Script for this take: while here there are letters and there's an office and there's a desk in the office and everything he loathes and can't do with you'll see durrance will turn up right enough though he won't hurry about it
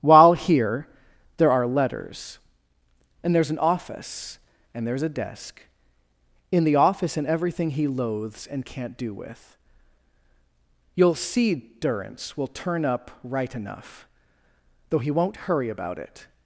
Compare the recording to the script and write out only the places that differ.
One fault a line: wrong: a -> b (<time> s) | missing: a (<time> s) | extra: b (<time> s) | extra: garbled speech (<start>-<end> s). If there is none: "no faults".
no faults